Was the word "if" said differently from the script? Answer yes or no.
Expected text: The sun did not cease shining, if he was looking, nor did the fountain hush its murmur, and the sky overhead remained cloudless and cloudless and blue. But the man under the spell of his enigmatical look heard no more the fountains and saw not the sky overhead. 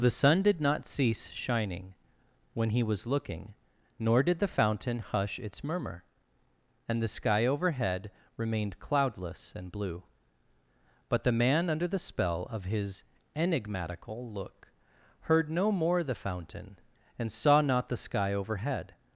yes